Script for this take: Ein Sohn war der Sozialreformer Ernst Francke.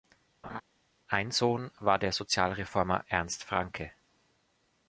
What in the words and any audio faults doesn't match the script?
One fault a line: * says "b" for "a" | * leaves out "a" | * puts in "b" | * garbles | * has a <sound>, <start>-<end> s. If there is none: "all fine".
* has a laugh, 0.4-0.6 s